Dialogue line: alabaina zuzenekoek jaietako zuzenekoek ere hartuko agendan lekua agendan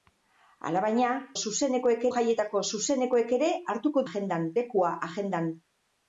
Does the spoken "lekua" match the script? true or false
true